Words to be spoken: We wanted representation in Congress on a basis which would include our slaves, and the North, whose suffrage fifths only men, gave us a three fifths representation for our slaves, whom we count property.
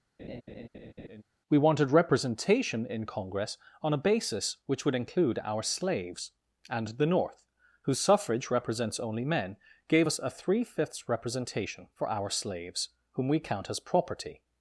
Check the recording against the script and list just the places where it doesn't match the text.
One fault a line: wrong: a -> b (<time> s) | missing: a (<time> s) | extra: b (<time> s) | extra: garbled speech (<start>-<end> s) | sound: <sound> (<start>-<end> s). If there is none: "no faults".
sound: laugh (0.2-1.2 s)
wrong: fifths -> represents (8.5 s)
extra: as (13.7 s)